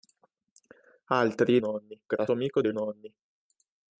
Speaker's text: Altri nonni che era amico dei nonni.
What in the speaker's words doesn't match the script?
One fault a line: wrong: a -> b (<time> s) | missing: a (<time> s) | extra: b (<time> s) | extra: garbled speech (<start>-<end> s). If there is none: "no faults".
no faults